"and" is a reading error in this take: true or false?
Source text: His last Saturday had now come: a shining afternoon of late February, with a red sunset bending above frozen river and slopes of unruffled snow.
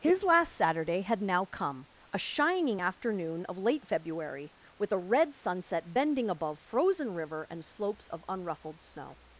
false